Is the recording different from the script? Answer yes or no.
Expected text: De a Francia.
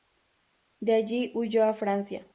yes